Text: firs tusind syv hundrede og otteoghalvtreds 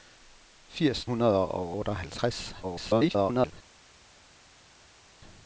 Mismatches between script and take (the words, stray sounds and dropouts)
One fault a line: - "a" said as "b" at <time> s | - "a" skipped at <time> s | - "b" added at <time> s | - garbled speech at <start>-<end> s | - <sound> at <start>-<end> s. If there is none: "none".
- "tusind syv" skipped at 1.1 s
- garbled speech at 2.6-3.5 s